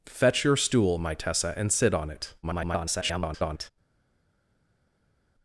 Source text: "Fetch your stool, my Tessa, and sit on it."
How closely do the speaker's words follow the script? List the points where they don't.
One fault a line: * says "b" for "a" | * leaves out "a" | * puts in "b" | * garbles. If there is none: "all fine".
* garbles